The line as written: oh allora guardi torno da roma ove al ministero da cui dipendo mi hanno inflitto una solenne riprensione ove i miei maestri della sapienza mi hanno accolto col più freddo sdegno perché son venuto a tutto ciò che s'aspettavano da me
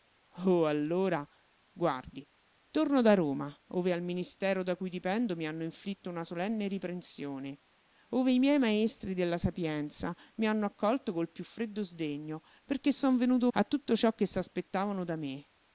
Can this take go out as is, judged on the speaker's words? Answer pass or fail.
pass